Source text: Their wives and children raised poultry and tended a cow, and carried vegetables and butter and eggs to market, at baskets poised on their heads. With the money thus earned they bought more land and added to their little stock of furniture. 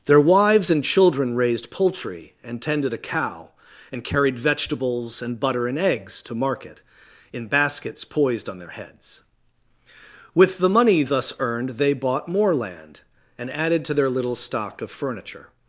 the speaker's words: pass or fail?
fail